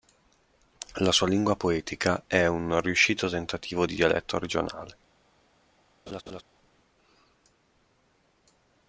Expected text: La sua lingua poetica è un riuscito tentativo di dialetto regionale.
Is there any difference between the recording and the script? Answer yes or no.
no